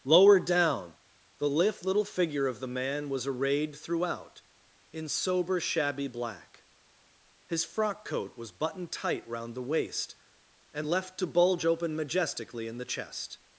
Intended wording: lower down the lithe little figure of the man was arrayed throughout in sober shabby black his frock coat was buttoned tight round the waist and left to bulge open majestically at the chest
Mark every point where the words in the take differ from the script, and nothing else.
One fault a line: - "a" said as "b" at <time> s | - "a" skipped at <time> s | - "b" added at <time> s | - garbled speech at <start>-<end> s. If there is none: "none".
- "at" said as "in" at 12.7 s